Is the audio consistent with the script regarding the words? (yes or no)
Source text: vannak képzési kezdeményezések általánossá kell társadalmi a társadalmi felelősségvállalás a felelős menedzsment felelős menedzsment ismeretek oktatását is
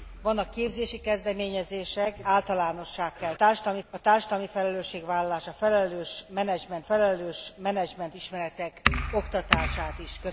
yes